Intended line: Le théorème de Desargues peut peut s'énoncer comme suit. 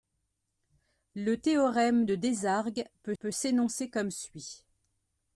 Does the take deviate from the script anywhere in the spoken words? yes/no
no